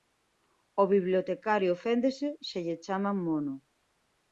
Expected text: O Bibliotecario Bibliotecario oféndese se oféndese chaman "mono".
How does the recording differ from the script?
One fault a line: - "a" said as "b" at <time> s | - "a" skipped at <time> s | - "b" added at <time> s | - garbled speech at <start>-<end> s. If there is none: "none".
- "Bibliotecario" skipped at 1.7 s
- "oféndese" said as "lle" at 2.6 s